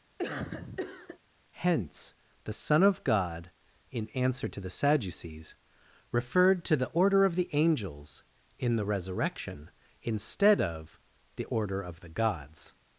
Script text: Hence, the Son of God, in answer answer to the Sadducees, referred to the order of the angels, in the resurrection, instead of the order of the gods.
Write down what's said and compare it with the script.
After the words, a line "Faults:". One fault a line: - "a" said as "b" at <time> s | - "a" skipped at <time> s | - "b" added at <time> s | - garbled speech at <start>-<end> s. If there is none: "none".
Hence, the Son of God, in answer to the Sadducees, referred to the order of the angels, in the resurrection, instead of the order of the gods.
Faults:
- "answer" skipped at 4.5 s